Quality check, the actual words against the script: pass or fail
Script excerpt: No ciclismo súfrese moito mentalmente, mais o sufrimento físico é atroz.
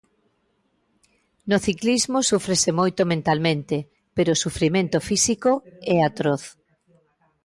fail